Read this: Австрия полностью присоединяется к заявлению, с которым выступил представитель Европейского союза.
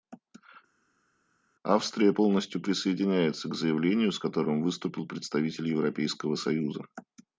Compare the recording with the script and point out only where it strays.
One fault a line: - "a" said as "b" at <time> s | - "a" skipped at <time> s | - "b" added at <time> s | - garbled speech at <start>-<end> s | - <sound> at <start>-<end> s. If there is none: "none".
none